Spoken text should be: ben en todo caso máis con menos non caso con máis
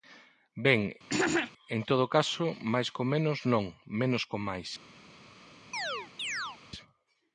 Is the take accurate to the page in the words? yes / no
no